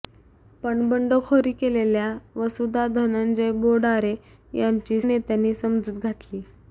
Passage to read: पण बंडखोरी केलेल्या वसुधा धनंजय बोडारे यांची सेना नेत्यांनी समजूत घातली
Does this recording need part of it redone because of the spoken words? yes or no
yes